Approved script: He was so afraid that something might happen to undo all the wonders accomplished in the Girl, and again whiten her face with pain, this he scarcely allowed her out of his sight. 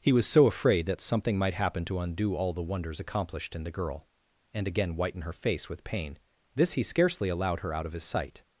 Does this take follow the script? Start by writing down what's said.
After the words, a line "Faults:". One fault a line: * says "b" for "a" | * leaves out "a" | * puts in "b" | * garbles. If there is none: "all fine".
He was so afraid that something might happen to undo all the wonders accomplished in the Girl, and again whiten her face with pain, this he scarcely allowed her out of his sight.
Faults:
all fine